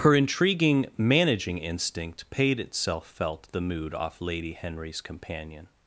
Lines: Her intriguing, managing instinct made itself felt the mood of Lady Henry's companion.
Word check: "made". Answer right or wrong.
wrong